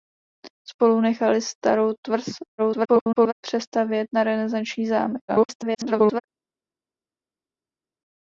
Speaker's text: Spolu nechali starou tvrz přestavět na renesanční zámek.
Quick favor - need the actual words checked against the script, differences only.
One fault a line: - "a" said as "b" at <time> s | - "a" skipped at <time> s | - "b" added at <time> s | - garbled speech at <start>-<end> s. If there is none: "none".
- garbled speech at 2.6-3.3 s
- garbled speech at 5.3-6.2 s